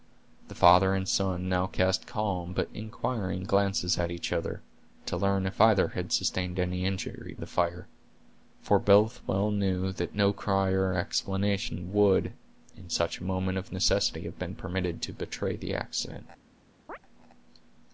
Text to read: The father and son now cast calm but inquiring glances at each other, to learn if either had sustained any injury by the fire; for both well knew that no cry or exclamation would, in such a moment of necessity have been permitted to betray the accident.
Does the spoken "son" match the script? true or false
true